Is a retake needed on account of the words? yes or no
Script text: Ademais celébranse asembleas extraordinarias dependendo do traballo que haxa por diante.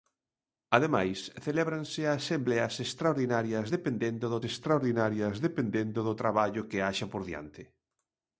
yes